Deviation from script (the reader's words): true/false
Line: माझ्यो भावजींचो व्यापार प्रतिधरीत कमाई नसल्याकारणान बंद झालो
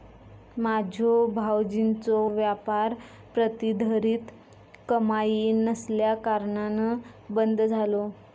false